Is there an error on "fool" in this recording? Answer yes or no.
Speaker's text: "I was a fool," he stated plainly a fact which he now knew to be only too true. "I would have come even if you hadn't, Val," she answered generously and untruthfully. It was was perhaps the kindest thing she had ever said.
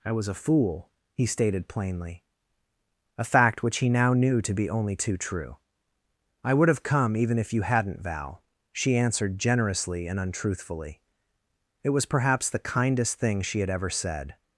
no